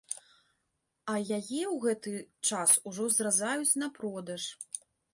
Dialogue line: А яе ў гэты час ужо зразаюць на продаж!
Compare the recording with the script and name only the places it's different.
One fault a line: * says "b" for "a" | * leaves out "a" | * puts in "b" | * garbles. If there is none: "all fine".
all fine